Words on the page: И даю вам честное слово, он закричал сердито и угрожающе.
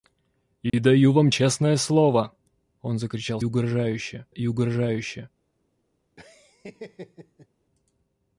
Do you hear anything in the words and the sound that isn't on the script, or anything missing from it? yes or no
yes